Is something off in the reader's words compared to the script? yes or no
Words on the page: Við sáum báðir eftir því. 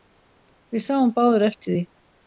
no